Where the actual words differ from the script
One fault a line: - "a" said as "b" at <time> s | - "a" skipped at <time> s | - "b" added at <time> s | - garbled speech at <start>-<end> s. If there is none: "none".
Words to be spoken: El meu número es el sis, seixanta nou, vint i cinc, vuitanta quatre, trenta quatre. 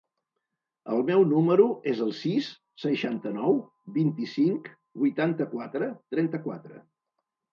none